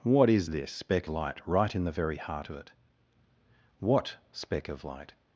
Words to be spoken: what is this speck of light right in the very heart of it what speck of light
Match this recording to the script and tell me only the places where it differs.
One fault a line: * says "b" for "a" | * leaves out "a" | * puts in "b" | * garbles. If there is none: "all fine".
* leaves out "of"